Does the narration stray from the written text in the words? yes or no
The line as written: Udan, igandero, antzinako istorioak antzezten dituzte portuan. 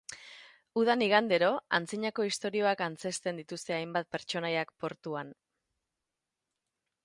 yes